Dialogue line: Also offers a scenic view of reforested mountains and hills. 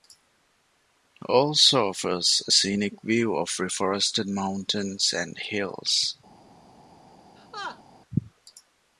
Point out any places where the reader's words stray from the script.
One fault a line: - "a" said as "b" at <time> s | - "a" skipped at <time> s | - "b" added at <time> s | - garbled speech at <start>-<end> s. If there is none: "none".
none